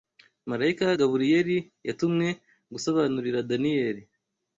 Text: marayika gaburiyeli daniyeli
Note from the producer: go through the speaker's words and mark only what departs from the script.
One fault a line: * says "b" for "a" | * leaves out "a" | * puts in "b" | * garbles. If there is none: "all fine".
* puts in "yatumwe gusobanurira"